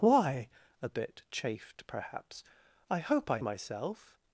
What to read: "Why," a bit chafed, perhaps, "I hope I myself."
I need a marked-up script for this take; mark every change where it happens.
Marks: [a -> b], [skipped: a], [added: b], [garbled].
"Why," a bit chafed, perhaps, "I hope I myself."